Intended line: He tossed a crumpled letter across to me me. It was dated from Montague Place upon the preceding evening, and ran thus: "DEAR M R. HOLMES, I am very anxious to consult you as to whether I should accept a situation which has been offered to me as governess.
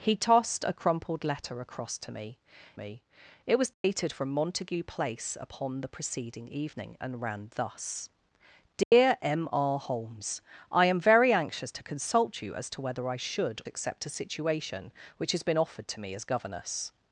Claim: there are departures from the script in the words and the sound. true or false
true